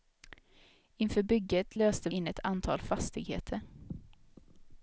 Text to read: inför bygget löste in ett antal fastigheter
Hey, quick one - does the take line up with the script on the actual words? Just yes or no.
yes